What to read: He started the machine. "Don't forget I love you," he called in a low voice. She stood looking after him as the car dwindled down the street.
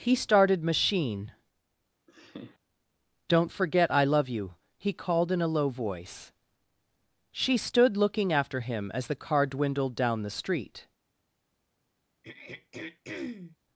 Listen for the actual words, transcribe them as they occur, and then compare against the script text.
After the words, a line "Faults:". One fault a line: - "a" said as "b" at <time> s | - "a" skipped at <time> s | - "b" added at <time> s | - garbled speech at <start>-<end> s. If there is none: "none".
He started machine. "Don't forget I love you," he called in a low voice. She stood looking after him as the car dwindled down the street.
Faults:
- "the" skipped at 0.6 s